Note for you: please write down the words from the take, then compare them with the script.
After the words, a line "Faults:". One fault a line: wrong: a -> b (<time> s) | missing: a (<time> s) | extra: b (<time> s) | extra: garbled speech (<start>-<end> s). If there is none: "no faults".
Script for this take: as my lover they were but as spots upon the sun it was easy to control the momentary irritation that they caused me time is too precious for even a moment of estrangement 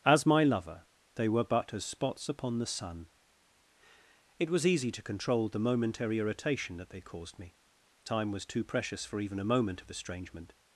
as my lover they were but as spots upon the sun it was easy to control the momentary irritation that they caused me time was too precious for even a moment of estrangement
Faults:
wrong: is -> was (8.3 s)